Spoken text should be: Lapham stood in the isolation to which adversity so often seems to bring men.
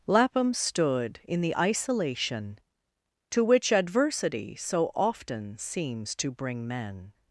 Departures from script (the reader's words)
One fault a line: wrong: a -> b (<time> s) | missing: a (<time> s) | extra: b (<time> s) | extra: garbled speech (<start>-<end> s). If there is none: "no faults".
no faults